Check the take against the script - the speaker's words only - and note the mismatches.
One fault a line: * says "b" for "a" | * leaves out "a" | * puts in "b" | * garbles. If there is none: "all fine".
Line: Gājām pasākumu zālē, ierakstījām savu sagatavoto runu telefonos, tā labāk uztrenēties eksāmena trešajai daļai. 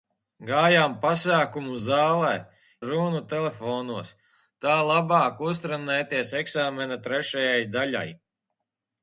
* leaves out "ierakstījām savu sagatavoto"